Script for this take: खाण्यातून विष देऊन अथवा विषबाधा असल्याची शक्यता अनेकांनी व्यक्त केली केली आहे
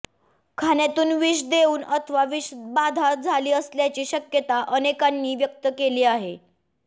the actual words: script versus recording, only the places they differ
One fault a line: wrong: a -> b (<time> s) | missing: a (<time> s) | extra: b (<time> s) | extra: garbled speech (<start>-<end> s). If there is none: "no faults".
extra: झाली (3.1 s)
missing: केली (6.0 s)